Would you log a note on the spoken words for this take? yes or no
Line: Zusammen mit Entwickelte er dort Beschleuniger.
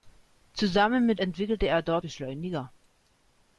no